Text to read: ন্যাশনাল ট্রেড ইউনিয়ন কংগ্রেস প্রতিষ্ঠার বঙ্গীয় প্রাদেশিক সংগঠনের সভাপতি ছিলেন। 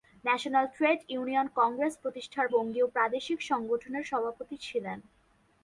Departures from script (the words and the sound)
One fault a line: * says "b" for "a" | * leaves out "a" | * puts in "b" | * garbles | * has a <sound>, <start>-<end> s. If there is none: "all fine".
all fine